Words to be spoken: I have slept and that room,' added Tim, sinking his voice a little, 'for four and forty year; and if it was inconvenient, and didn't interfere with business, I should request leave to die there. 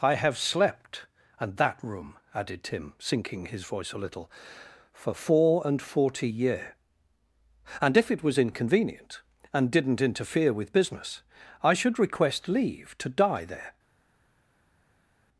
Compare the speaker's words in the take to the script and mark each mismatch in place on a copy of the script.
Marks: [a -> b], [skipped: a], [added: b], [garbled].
I have slept and that room,' added Tim, sinking his voice a little, 'for four and forty year; and if it was inconvenient, and didn't interfere with business, I should request leave to die there.